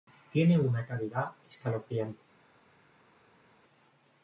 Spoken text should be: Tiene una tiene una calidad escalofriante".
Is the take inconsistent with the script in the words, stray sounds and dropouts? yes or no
yes